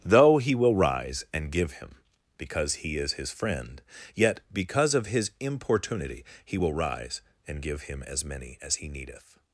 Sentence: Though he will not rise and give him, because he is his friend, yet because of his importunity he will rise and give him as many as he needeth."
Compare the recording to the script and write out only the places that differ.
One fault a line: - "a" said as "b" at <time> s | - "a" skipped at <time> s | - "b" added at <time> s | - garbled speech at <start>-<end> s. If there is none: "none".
- "not" skipped at 0.8 s